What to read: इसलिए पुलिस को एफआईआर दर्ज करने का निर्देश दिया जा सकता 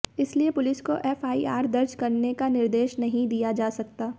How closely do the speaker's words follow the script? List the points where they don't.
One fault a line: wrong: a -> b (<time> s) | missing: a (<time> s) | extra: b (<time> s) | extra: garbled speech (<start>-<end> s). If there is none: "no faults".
extra: नहीं (3.0 s)